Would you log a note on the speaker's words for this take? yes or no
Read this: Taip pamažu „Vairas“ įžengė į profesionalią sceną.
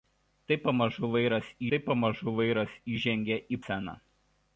yes